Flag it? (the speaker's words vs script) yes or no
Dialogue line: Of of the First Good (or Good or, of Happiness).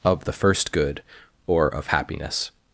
yes